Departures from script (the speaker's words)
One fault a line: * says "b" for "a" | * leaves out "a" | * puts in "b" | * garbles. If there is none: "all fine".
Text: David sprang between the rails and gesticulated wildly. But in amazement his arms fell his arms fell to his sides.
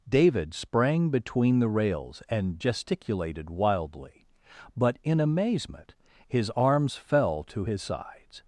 * leaves out "his arms fell"